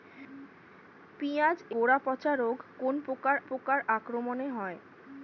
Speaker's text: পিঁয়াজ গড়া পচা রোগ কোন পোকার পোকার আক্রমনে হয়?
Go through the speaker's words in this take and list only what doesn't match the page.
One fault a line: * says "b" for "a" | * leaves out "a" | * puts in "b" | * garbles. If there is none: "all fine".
all fine